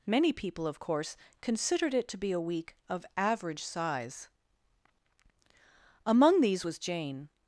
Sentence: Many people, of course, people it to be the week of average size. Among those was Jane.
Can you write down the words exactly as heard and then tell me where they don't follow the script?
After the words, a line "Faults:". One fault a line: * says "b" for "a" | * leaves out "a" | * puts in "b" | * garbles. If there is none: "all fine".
Many people, of course, considered it to be a week of average size. Among these was Jane.
Faults:
* says "considered" for "people"
* says "a" for "the"
* says "these" for "those"